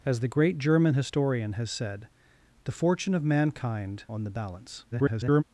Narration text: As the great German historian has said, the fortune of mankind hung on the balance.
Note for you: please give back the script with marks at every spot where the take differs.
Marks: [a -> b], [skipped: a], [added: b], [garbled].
As the great German historian has said, the fortune of mankind [skipped: hung] on the balance. [garbled]